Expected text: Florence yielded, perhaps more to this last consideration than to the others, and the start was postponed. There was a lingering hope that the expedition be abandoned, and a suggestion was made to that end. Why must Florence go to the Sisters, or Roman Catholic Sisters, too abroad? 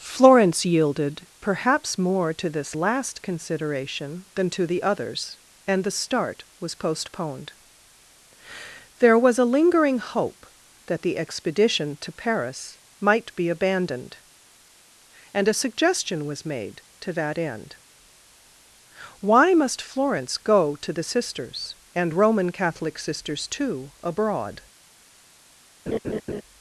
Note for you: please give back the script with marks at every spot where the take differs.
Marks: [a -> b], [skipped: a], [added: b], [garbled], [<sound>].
Florence yielded, perhaps more to this last consideration than to the others, and the start was postponed. There was a lingering hope that the expedition [added: to Paris might] be abandoned, and a suggestion was made to that end. Why must Florence go to the Sisters, [or -> and] Roman Catholic Sisters, too abroad? [laugh]